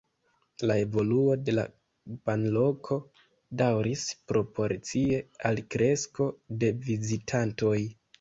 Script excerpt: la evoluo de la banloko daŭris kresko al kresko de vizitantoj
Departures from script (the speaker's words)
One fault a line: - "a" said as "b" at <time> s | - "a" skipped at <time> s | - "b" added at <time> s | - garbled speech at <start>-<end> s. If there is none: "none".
- "kresko" said as "proporcie" at 4.3 s